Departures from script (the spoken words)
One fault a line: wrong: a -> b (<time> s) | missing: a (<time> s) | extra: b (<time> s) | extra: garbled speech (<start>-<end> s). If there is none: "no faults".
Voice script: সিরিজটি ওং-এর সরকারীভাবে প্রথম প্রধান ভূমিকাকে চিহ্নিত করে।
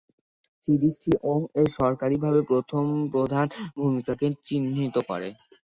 no faults